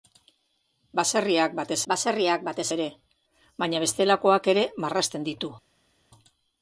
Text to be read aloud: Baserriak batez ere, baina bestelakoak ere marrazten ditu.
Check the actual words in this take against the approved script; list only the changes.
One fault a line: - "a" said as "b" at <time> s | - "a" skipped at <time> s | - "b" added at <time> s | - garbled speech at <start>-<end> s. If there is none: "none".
- "baserriak batez" added at 1.9 s